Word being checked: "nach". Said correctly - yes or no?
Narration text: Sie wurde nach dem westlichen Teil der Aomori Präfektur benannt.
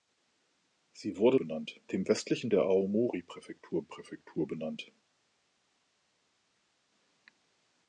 no